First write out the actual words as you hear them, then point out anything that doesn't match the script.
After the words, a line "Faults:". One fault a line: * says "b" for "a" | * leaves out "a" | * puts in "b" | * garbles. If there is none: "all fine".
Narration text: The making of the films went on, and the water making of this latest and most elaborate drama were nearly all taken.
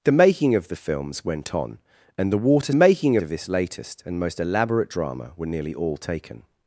The making of the films went on, and the water making of this latest and most elaborate drama were nearly all taken.
Faults:
all fine